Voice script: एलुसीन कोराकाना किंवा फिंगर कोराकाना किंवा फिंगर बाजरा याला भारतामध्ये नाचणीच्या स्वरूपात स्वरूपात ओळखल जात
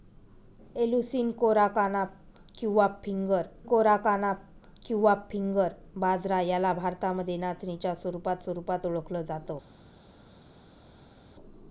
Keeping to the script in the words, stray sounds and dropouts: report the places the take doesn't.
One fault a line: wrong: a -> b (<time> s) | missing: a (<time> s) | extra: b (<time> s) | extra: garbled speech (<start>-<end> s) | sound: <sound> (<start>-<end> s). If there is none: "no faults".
no faults